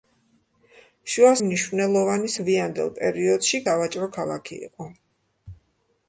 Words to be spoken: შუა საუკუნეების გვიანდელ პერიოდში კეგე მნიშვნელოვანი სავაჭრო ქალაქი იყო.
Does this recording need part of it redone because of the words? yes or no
yes